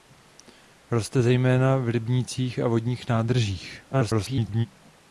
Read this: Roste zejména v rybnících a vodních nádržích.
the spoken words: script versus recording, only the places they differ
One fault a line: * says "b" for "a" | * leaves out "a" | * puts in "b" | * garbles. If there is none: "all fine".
* garbles